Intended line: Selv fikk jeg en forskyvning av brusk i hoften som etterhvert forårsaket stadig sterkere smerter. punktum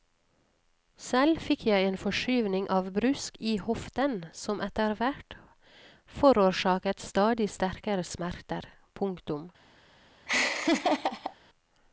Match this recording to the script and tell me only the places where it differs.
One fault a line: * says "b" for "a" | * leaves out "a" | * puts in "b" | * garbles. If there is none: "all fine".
all fine